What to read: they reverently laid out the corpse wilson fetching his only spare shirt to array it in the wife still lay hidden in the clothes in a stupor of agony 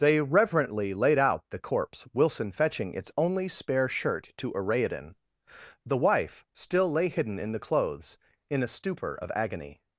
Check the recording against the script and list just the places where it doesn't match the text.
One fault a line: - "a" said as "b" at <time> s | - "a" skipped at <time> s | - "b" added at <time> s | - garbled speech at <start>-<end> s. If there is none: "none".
- "his" said as "its" at 3.0 s